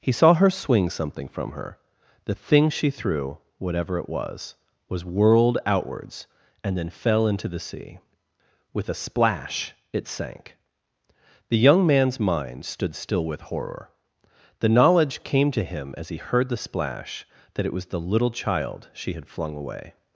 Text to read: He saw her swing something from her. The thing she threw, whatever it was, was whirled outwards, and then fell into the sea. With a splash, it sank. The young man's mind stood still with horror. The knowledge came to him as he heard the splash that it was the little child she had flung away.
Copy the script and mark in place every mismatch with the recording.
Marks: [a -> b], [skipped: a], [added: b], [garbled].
He saw her swing something from her. The thing she threw, whatever it was, was whirled outwards, and then fell into the sea. With a splash, it sank. The young man's mind stood still with horror. The knowledge came to him as he heard the splash that it was the little child she had flung away.